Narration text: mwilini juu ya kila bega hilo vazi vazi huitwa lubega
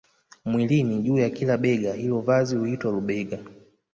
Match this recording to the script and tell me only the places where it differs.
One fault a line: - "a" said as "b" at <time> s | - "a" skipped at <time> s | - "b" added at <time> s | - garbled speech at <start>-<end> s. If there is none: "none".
- "vazi" skipped at 2.5 s